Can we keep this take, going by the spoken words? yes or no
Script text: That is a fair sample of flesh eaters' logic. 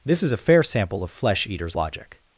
no